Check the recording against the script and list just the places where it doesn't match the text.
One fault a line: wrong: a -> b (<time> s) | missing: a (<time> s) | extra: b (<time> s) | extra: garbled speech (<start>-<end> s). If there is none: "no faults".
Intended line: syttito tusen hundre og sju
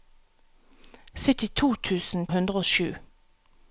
no faults